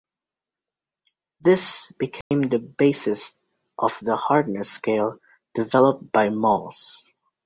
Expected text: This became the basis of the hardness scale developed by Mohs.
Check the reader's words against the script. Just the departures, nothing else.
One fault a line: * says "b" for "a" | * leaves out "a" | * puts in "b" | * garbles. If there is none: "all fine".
all fine